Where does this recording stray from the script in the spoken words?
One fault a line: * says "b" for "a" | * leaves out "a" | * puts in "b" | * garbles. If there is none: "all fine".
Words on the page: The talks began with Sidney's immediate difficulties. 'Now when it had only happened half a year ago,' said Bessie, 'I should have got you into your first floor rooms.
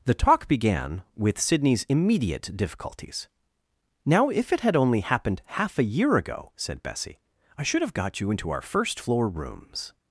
* says "talk" for "talks"
* says "if" for "when"
* says "our" for "your"